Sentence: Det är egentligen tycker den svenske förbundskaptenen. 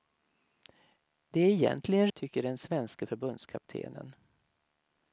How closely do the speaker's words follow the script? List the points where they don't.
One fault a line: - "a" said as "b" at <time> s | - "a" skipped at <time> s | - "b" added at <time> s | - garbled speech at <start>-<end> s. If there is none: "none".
none